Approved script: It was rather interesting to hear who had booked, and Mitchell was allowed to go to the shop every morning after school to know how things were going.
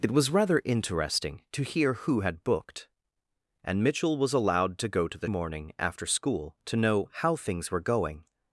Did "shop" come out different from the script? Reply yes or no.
yes